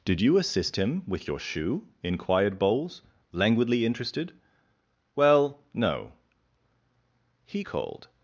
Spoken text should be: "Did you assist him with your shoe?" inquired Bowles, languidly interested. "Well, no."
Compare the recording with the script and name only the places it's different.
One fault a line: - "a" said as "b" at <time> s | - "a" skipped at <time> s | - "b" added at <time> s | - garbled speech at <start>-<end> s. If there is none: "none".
- "He called" added at 7.5 s